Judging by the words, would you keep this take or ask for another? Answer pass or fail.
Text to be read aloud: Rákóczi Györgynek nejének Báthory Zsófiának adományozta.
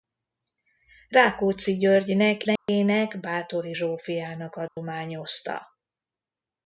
pass